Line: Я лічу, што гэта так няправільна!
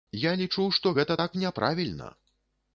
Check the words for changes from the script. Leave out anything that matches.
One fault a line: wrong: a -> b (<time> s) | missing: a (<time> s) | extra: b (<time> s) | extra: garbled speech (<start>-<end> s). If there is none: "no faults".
no faults